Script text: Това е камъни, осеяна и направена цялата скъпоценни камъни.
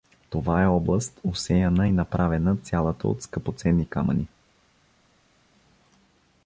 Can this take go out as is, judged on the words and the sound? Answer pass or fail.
fail